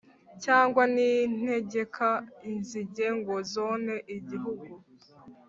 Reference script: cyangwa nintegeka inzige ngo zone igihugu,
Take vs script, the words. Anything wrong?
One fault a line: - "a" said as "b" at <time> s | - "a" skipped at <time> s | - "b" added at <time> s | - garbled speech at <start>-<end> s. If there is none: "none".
none